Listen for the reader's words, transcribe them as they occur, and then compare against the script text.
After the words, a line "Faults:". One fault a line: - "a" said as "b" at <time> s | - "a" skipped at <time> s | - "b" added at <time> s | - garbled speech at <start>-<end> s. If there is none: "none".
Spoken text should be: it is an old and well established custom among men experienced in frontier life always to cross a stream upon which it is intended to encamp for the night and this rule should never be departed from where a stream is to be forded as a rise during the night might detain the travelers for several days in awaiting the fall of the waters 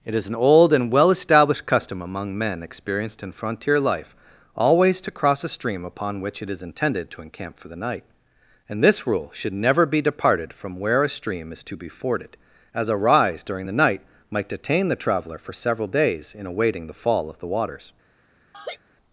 it is an old and well established custom among men experienced in frontier life always to cross a stream upon which it is intended to encamp for the night and this rule should never be departed from where a stream is to be forded as a rise during the night might detain the traveler for several days in awaiting the fall of the waters
Faults:
- "travelers" said as "traveler" at 15.0 s